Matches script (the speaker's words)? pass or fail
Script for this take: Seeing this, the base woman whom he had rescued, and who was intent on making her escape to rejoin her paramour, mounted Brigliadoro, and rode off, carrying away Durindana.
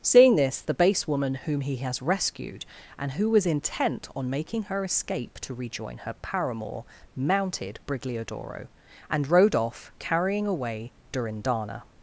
fail